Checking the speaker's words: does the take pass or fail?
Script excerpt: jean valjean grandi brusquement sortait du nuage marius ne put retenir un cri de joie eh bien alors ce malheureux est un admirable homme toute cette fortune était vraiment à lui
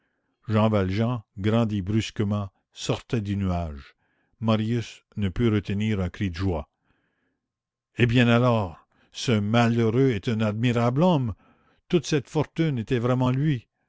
pass